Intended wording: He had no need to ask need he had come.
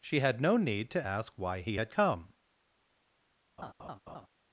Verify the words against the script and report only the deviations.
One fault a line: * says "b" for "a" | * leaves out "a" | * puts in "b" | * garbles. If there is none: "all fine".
* says "She" for "He"
* says "why" for "need"